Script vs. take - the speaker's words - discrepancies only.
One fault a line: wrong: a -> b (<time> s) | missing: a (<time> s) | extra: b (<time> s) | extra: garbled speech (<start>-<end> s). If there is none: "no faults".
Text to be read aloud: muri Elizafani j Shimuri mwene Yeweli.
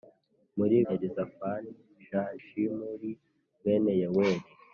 no faults